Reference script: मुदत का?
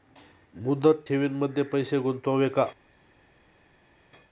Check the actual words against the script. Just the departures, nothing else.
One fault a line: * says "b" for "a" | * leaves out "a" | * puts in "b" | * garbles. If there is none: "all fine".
* puts in "ठेवींमध्ये पैसे गुंतवावे"